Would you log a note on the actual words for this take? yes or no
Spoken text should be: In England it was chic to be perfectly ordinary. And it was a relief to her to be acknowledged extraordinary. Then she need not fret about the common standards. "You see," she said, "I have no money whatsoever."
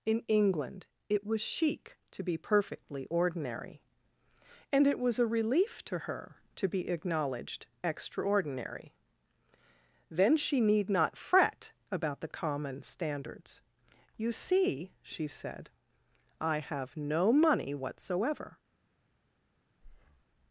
no